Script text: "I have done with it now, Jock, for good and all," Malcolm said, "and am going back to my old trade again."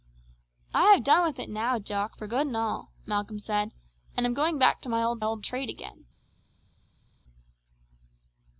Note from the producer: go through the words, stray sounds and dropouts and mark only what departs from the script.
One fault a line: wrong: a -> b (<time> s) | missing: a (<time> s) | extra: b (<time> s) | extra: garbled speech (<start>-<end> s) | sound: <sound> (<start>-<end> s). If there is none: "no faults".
extra: old (5.2 s)